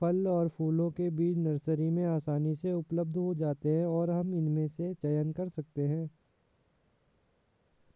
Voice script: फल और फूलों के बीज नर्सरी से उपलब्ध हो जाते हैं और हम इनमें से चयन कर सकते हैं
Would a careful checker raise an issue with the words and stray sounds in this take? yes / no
yes